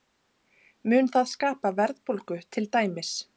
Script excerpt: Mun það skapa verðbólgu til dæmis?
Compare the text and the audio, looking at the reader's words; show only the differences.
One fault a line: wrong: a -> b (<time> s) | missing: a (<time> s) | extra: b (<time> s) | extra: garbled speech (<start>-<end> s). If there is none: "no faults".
no faults